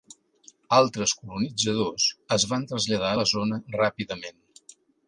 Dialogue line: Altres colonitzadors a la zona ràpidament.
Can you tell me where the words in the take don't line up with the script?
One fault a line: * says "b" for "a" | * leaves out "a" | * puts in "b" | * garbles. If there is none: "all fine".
* puts in "es van traslladar"